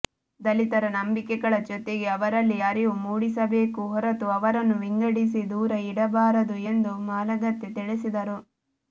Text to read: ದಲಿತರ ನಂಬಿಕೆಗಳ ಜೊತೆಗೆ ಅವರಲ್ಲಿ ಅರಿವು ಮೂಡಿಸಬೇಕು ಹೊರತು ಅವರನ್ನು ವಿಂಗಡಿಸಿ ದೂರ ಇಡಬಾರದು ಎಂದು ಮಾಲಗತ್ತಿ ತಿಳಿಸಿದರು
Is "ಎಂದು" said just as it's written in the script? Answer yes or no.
yes